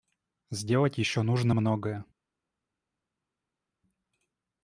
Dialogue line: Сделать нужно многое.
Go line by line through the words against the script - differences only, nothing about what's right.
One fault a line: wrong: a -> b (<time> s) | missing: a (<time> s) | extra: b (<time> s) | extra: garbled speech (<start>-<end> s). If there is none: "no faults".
extra: еще (1.0 s)